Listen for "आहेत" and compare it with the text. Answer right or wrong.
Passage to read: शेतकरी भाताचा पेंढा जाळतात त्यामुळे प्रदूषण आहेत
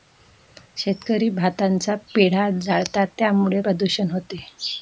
wrong